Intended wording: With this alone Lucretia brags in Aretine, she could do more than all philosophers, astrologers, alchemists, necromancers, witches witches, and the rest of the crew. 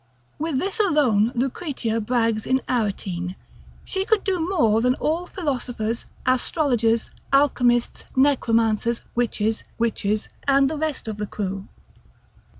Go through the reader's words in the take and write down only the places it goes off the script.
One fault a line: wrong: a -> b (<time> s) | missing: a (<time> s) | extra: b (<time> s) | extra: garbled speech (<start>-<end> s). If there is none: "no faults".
no faults